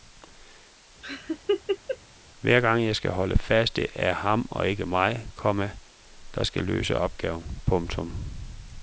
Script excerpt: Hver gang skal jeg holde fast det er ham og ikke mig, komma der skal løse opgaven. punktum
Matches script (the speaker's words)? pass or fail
pass